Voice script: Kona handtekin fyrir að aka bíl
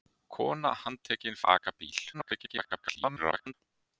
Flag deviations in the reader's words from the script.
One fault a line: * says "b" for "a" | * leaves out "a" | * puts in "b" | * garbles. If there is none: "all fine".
* leaves out "fyrir"
* garbles